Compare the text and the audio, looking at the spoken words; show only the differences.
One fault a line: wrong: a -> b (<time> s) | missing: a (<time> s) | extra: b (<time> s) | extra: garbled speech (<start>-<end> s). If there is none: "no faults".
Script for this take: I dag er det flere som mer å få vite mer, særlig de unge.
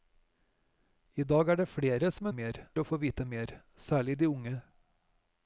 no faults